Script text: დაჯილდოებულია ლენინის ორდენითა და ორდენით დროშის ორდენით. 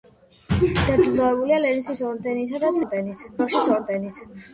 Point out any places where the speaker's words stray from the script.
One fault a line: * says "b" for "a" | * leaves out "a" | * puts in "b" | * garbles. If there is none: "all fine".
all fine